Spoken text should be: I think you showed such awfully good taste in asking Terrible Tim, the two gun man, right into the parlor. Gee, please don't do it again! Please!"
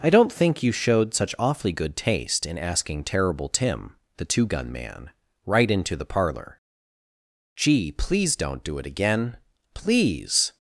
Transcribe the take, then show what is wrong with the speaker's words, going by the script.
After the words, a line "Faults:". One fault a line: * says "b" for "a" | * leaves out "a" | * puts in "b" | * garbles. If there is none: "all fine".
I don't think you showed such awfully good taste in asking Terrible Tim, the two gun man, right into the parlor. Gee, please don't do it again! Please!"
Faults:
* puts in "don't"